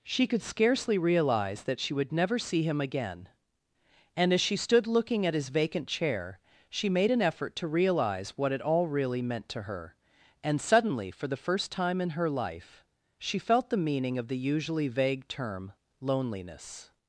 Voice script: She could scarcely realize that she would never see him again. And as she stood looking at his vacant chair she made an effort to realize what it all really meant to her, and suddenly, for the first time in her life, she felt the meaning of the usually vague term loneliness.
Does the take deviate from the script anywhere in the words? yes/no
no